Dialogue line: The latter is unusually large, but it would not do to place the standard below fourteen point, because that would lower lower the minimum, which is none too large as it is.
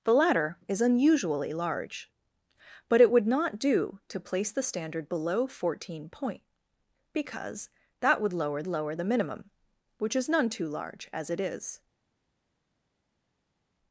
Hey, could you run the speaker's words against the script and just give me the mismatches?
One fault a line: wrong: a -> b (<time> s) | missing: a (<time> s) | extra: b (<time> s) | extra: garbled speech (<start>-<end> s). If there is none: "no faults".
no faults